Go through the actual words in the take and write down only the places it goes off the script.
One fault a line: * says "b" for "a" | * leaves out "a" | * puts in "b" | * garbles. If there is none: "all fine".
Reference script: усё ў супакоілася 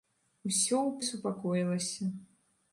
all fine